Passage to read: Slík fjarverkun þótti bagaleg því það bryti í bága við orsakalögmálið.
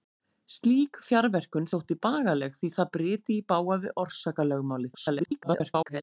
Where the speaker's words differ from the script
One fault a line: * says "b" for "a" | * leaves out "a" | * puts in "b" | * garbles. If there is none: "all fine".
* garbles